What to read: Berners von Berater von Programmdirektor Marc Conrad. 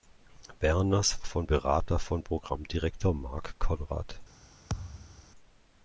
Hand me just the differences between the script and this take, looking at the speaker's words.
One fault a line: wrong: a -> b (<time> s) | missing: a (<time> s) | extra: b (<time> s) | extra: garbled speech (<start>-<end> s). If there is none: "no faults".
no faults